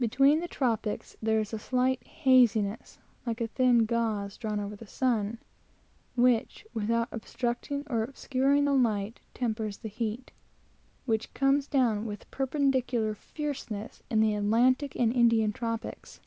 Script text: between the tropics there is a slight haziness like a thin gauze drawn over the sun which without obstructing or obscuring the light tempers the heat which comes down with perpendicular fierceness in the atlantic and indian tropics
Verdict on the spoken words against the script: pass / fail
pass